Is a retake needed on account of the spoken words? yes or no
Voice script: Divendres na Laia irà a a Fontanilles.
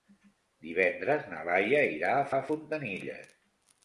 no